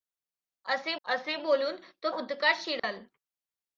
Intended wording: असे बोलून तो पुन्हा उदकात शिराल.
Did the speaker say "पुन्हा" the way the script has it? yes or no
no